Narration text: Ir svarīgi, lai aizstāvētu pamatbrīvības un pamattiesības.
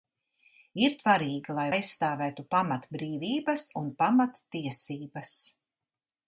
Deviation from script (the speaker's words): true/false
false